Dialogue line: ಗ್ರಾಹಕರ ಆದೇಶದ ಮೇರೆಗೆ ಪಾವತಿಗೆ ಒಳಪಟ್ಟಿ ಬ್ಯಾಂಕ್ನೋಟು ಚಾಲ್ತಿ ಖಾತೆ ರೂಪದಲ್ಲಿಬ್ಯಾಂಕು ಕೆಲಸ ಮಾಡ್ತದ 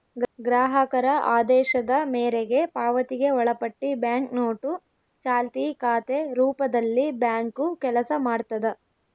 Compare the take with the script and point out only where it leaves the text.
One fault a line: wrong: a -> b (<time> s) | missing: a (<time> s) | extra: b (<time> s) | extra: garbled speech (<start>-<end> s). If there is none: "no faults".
no faults